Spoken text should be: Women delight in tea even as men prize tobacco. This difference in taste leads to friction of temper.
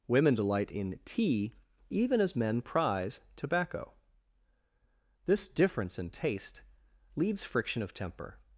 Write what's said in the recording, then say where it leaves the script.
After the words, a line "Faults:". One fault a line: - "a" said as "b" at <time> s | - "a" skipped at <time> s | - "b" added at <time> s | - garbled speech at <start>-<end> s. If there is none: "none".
Women delight in tea even as men prize tobacco. This difference in taste leads friction of temper.
Faults:
- "to" skipped at 7.4 s